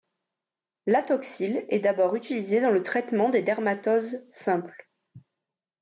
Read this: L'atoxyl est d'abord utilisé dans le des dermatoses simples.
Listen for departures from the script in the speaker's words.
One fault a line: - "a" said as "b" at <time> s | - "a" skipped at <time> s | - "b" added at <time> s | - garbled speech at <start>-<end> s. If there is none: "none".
- "traitement" added at 2.8 s